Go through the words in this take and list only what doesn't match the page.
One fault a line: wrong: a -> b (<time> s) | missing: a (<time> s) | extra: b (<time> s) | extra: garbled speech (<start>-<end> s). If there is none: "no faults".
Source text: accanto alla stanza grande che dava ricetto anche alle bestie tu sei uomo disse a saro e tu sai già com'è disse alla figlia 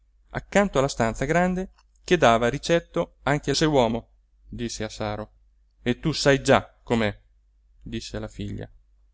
missing: alle bestie tu (3.5 s)